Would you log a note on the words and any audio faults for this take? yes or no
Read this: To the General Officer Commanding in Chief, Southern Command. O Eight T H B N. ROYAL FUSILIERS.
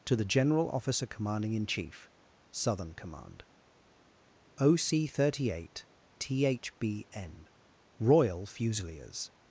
yes